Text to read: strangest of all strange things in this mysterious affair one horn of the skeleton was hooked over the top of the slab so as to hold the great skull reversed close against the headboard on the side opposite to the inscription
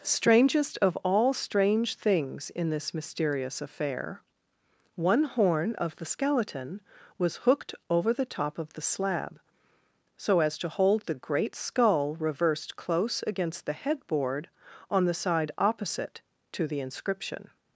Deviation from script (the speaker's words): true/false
false